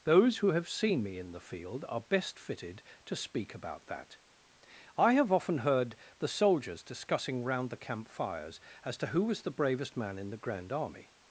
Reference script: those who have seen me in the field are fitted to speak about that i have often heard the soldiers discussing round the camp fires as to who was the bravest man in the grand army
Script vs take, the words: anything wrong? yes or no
yes